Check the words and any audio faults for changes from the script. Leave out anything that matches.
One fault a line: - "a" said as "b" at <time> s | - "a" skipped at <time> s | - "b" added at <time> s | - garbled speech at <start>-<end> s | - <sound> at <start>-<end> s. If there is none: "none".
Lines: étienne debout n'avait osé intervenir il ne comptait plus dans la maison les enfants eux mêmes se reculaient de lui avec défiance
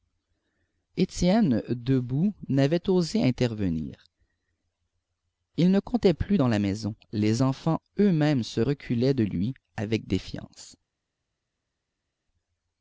none